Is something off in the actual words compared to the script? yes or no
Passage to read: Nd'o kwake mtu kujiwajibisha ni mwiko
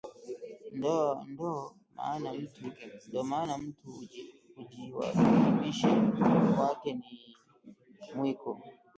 yes